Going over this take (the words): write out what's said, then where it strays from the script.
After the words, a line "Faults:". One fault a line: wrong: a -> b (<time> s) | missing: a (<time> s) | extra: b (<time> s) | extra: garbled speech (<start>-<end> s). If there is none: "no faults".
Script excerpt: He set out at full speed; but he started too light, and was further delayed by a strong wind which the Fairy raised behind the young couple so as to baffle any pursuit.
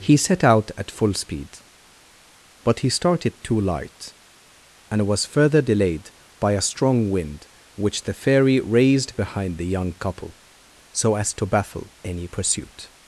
He set out at full speed; but he started too light, and was further delayed by a strong wind which the Fairy raised behind the young couple so as to baffle any pursuit.
Faults:
no faults